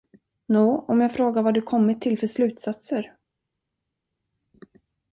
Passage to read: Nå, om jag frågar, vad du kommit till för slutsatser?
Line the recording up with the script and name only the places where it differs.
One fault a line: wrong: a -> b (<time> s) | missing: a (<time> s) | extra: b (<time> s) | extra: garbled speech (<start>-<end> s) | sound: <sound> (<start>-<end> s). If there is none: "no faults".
no faults